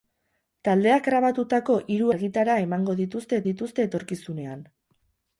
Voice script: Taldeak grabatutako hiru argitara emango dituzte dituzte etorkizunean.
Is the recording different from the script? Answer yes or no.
no